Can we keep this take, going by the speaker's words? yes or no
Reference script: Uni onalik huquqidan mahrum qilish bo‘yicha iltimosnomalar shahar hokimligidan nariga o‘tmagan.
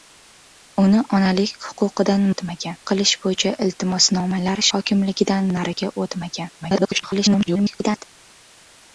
no